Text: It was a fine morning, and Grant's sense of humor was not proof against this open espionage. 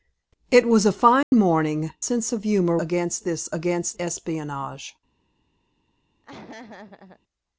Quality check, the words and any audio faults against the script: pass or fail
fail